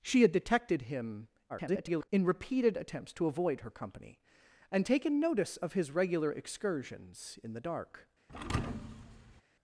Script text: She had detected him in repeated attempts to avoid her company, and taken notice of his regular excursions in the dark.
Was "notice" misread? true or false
false